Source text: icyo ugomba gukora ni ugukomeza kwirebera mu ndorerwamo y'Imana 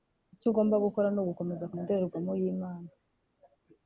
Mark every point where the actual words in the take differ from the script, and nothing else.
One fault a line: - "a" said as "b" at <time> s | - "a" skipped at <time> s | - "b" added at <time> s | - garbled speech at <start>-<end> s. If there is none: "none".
- "kwirebera" skipped at 1.7 s